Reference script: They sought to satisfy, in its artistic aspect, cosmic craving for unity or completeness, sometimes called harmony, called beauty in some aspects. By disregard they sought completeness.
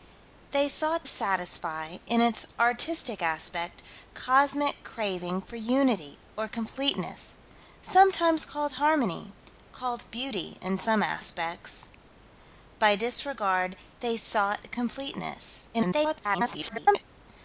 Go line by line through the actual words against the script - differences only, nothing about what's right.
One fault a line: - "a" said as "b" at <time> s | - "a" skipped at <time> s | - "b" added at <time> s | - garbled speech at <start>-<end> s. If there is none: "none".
- "to" skipped at 1.1 s
- garbled speech at 15.7-17.0 s